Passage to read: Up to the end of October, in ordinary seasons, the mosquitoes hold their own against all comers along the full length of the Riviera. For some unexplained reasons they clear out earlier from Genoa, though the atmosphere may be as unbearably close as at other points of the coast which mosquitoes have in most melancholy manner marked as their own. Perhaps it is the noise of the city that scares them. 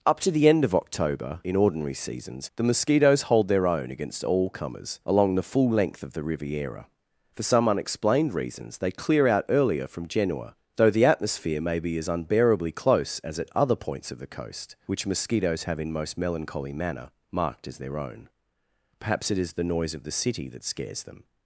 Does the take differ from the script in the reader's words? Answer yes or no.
no